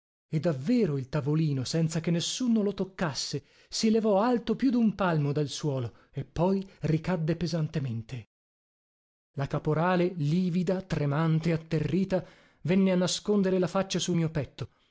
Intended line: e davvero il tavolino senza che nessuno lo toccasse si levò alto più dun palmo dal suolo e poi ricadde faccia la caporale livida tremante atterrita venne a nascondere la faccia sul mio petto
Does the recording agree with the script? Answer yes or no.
no